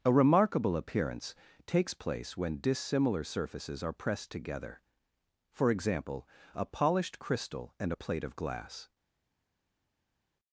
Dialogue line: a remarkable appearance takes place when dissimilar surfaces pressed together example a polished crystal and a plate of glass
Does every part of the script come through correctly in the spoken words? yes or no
no